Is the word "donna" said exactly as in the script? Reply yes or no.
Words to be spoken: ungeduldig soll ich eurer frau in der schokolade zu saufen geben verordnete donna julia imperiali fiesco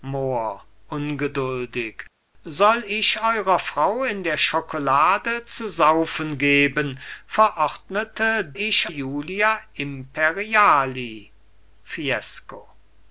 no